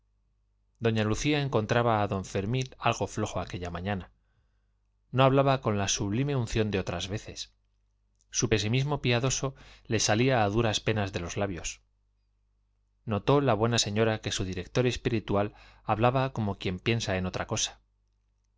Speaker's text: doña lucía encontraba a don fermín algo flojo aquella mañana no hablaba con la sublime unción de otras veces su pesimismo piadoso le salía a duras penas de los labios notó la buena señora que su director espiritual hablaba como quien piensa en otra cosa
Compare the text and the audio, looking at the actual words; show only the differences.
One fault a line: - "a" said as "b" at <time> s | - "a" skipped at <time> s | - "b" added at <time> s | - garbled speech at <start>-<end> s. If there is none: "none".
none